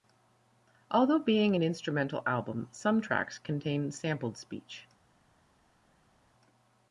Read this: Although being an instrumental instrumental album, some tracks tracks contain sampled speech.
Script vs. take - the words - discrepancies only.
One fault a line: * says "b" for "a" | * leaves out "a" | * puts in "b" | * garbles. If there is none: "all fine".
* leaves out "instrumental"
* leaves out "tracks"